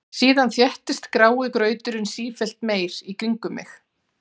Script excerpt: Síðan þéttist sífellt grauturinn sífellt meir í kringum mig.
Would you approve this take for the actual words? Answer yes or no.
no